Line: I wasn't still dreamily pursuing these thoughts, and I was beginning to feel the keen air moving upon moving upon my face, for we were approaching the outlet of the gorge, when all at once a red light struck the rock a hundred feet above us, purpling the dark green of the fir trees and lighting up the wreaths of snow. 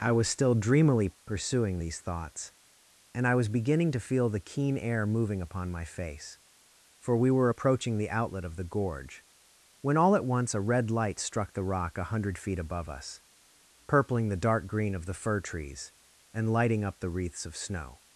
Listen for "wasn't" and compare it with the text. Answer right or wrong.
wrong